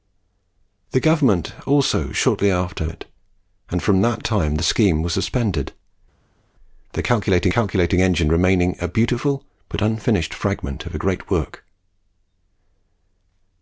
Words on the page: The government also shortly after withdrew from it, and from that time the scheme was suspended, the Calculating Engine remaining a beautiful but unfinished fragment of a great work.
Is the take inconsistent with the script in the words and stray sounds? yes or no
yes